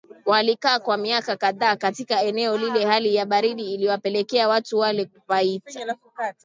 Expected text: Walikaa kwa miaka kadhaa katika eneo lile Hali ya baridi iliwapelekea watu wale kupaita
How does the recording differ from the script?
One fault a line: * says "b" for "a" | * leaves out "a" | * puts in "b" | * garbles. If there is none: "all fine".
all fine